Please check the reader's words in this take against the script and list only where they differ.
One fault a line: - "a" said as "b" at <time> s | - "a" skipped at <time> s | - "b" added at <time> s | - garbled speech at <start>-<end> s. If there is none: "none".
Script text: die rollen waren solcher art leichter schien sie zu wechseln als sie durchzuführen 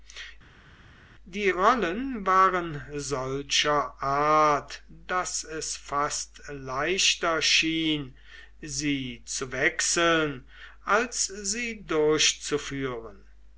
- "daß es fast" added at 5.1 s